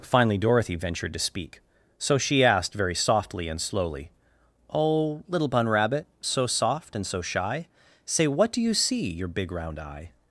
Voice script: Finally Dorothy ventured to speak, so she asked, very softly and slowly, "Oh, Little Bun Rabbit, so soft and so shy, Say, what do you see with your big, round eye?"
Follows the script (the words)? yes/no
no